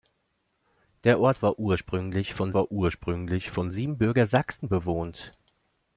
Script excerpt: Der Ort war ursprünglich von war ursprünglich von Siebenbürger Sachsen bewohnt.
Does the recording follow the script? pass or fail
pass